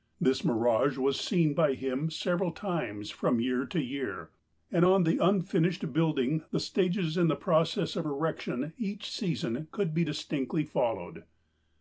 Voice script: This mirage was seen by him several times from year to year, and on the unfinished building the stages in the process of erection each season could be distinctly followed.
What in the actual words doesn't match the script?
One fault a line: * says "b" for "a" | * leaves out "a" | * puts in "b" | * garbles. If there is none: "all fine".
all fine